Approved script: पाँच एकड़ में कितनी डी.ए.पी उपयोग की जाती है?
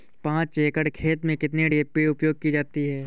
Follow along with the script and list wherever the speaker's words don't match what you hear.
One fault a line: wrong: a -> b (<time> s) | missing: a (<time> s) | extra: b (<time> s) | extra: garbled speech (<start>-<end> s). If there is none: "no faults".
extra: खेत (0.9 s)